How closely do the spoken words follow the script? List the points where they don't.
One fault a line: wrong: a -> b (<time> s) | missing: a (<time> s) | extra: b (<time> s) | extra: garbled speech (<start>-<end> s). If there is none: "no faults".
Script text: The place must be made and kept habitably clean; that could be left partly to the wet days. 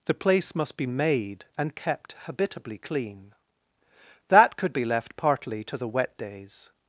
no faults